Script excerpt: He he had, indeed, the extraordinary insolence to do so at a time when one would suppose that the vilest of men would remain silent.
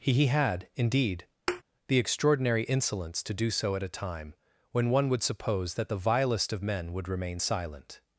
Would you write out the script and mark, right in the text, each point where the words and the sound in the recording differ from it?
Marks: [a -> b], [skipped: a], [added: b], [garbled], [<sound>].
He he had, indeed, [thud] the extraordinary insolence to do so at a time when one would suppose that the vilest of men would remain silent.